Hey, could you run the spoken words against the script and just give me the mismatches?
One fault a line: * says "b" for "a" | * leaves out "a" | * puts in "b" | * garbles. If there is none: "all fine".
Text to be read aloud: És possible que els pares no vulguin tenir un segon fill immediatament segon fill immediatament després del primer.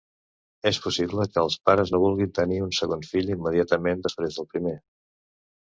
* leaves out "segon fill immediatament"